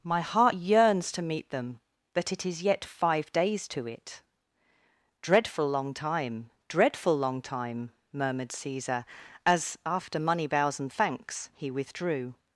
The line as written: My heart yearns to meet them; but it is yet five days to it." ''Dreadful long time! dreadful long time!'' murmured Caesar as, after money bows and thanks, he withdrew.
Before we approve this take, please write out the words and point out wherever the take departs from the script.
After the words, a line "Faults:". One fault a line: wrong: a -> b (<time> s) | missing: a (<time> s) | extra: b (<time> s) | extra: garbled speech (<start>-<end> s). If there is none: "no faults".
My heart yearns to meet them; but it is yet five days to it." ''Dreadful long time! dreadful long time!'' murmured Caesar as, after money bows and thanks, he withdrew.
Faults:
no faults